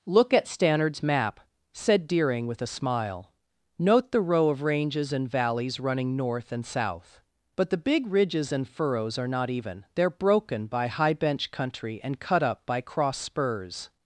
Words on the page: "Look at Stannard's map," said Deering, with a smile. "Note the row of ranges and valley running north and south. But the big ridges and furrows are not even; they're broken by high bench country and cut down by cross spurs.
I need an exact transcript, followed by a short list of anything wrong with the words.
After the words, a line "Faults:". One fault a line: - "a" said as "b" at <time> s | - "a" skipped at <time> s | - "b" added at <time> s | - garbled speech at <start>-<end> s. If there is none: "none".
"Look at Stannard's map," said Deering, with a smile. "Note the row of ranges and valleys running north and south. But the big ridges and furrows are not even; they're broken by high bench country and cut up by cross spurs.
Faults:
- "valley" said as "valleys" at 5.3 s
- "down" said as "up" at 12.4 s